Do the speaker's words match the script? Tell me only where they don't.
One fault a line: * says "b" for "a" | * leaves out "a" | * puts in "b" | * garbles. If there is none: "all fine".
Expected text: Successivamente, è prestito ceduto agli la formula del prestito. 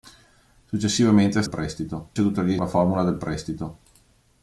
all fine